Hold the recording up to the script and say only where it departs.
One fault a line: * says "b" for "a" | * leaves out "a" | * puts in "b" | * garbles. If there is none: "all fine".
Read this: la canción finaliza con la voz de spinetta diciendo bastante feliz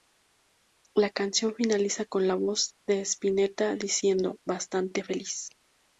all fine